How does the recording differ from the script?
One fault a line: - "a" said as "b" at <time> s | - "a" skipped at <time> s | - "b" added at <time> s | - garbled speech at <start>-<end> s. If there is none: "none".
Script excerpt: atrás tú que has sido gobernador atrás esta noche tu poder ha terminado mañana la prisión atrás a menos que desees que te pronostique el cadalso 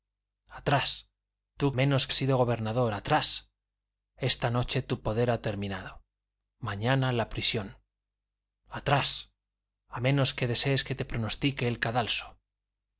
- "que" said as "menos" at 1.7 s